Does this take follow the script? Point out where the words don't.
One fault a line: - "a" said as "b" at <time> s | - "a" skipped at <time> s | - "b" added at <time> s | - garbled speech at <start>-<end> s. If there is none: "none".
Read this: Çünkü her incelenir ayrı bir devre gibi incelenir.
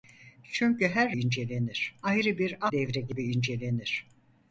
none